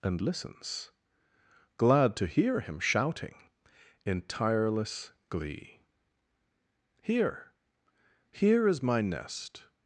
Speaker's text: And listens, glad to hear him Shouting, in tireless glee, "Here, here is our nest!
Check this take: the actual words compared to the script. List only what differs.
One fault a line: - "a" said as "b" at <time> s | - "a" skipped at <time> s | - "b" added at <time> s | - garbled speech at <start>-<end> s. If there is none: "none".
- "our" said as "my" at 8.8 s